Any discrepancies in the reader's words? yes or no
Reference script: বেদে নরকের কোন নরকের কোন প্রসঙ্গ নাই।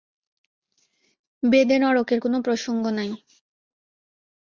yes